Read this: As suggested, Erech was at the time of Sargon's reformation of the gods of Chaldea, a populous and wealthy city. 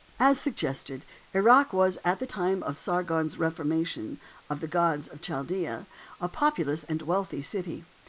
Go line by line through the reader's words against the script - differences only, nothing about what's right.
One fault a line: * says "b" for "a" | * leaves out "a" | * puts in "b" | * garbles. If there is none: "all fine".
all fine